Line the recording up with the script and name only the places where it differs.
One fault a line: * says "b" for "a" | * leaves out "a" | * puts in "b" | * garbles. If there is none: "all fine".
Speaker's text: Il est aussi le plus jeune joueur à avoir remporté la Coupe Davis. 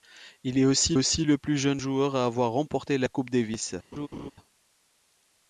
* puts in "aussi"